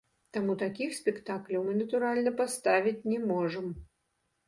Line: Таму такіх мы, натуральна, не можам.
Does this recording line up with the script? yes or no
no